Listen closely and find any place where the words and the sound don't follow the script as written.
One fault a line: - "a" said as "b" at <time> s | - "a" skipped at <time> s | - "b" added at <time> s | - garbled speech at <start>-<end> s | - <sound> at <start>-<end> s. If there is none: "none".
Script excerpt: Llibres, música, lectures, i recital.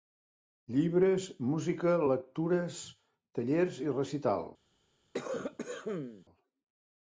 - "tallers" added at 3.4 s
- cough at 5.1-6.3 s